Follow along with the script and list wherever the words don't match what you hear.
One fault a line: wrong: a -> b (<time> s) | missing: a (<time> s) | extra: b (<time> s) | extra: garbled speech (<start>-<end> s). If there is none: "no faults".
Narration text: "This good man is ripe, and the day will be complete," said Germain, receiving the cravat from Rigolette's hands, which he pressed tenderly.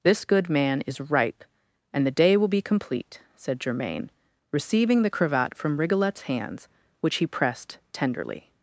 no faults